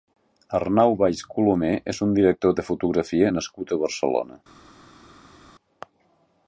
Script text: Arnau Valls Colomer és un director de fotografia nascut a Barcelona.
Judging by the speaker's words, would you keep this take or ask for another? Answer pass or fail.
pass